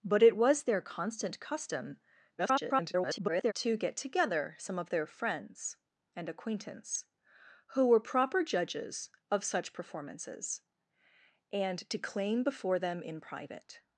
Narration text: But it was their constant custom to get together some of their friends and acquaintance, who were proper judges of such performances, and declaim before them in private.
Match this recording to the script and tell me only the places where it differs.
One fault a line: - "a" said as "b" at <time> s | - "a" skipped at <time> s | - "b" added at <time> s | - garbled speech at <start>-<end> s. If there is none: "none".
- garbled speech at 2.4-3.5 s